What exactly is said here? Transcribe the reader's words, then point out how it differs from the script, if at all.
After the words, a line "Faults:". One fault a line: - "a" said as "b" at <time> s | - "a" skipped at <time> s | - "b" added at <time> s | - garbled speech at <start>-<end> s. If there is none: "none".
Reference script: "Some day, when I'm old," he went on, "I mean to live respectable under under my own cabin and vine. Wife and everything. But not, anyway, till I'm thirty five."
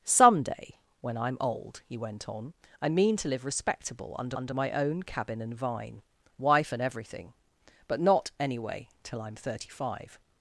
"Some day, when I'm old," he went on, "I mean to live respectable under under my own cabin and vine. Wife and everything. But not, anyway, till I'm thirty five."
Faults:
none